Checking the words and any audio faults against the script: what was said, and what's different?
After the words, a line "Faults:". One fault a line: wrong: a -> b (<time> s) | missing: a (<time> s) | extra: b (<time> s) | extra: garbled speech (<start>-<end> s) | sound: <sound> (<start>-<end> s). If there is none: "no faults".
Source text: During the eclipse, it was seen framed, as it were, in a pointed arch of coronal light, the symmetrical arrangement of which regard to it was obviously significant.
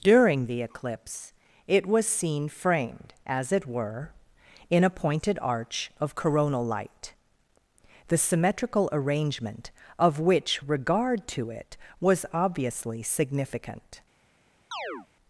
During the eclipse, it was seen framed, as it were, in a pointed arch of coronal light, the symmetrical arrangement of which regard to it was obviously significant.
Faults:
sound: chirp (14.7-15.1 s)